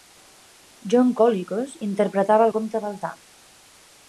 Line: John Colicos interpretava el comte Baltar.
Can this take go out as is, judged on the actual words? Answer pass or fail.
pass